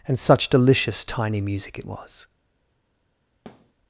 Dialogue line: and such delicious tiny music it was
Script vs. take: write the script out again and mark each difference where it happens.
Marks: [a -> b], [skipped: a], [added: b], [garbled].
and such delicious tiny music it was